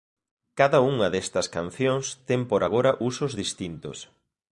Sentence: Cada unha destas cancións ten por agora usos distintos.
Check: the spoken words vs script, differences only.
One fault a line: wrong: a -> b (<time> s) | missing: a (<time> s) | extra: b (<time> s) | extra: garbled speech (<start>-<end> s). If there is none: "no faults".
no faults